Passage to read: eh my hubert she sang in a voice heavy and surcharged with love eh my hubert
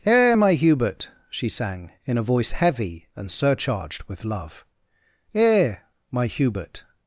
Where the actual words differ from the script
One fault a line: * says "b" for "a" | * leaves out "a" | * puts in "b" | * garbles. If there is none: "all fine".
all fine